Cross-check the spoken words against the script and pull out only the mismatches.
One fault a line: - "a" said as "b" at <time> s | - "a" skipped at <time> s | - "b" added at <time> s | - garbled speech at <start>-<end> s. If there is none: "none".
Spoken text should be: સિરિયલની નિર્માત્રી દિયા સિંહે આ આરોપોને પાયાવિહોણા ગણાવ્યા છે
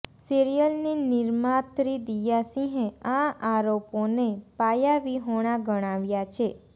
none